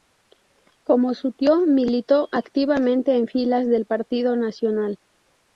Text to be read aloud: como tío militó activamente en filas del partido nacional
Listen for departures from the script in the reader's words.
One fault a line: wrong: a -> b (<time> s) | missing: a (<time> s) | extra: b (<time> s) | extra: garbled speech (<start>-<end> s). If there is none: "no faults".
extra: su (1.1 s)